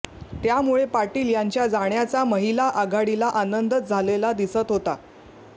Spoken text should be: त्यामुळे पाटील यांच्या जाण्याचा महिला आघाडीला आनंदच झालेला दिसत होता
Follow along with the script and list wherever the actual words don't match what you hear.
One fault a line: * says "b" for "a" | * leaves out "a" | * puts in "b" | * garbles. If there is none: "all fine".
all fine